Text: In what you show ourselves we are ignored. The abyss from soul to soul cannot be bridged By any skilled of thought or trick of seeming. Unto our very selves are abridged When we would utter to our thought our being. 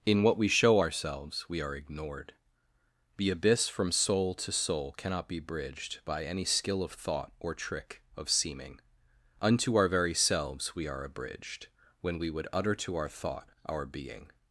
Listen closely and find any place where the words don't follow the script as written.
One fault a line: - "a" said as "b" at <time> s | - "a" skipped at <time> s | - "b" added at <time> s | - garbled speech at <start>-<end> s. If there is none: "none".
- "you" said as "we" at 0.3 s
- "skilled" said as "skill" at 6.4 s
- "we" added at 10.7 s